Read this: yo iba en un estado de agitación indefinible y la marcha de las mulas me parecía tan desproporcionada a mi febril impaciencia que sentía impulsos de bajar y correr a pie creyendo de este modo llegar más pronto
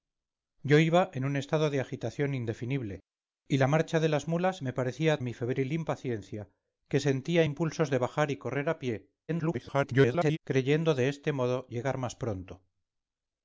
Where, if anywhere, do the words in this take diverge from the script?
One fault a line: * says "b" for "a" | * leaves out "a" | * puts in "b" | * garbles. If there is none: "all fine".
* leaves out "tan desproporcionada a"
* garbles